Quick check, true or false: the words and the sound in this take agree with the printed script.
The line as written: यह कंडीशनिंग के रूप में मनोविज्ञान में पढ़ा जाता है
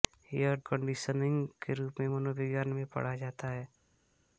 true